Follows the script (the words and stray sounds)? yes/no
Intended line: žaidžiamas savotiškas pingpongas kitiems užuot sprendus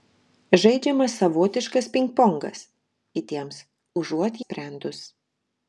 yes